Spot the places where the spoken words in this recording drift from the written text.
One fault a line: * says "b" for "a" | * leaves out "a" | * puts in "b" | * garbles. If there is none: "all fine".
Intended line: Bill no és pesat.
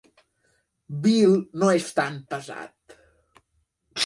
* puts in "tan"